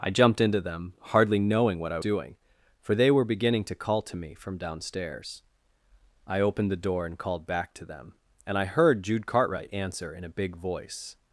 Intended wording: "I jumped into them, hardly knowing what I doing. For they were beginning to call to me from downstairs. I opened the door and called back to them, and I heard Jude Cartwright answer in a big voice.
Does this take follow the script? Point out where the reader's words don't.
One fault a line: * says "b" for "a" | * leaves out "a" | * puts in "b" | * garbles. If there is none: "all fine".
all fine